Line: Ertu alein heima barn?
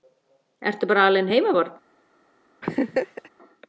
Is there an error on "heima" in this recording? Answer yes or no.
no